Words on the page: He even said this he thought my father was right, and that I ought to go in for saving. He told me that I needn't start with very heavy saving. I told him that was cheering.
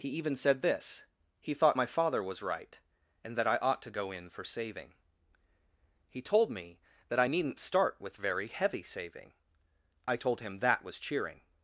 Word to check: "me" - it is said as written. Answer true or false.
true